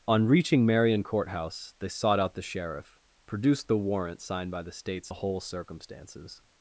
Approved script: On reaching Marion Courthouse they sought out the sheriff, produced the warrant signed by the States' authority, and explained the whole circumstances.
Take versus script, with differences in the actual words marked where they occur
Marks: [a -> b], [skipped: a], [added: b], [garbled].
On reaching Marion Courthouse they sought out the sheriff, produced the warrant signed by the States' [skipped: authority, and explained] the whole circumstances.